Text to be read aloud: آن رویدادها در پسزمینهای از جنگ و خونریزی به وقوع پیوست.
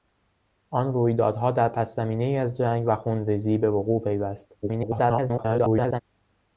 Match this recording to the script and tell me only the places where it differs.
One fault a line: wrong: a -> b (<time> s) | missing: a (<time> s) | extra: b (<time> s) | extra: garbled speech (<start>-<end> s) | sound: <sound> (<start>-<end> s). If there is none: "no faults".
extra: garbled speech (4.6-6.0 s)